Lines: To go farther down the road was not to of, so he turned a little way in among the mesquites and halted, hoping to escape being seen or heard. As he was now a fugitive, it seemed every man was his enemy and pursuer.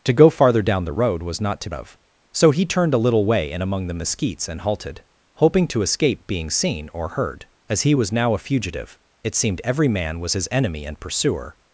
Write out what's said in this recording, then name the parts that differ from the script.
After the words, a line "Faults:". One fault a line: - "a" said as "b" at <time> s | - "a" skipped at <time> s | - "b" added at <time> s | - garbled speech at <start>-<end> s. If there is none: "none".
To go farther down the road was not to of, so he turned a little way in among the mesquites and halted, hoping to escape being seen or heard. As he was now a fugitive, it seemed every man was his enemy and pursuer.
Faults:
none